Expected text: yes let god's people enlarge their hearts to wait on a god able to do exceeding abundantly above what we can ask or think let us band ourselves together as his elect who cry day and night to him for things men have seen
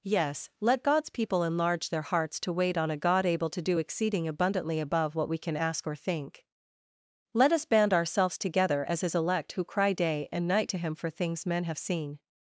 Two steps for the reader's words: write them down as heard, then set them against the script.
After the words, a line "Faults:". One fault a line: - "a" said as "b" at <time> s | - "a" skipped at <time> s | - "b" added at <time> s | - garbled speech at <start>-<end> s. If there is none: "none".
yes let god's people enlarge their hearts to wait on a god able to do exceeding abundantly above what we can ask or think let us band ourselves together as his elect who cry day and night to him for things men have seen
Faults:
none